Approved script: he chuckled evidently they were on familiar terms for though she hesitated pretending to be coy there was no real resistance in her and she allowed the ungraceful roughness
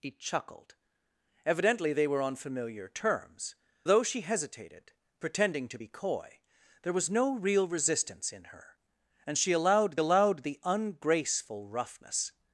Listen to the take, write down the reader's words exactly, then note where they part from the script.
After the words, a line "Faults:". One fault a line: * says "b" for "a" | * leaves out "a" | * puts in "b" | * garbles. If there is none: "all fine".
he chuckled evidently they were on familiar terms though she hesitated pretending to be coy there was no real resistance in her and she allowed allowed the ungraceful roughness
Faults:
* leaves out "for"
* puts in "allowed"